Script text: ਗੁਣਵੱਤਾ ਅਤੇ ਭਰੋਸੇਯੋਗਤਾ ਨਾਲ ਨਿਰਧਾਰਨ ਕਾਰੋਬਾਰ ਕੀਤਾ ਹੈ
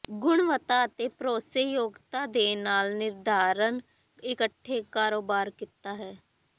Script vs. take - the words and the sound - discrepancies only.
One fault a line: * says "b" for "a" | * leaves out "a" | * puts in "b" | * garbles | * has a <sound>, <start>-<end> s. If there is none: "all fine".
* puts in "ਦੇ"
* puts in "ਇਕੱਠੇ"